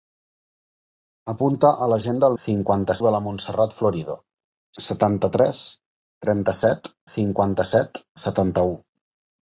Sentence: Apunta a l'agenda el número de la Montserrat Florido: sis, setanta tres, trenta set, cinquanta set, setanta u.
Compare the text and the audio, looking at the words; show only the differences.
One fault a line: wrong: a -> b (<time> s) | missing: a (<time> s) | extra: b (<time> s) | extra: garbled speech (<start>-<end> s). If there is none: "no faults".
wrong: número -> cinquanta (2.4 s)
missing: sis (4.2 s)